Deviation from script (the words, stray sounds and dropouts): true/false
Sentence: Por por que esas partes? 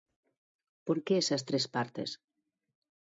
true